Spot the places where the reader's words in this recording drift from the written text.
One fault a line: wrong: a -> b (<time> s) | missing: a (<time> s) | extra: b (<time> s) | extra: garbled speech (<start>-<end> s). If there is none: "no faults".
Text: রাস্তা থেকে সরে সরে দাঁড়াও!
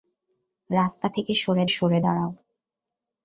no faults